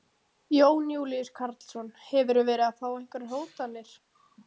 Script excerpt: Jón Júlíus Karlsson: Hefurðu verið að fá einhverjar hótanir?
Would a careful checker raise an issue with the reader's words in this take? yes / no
no